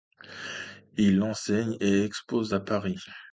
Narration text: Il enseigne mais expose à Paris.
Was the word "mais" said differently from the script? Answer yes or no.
yes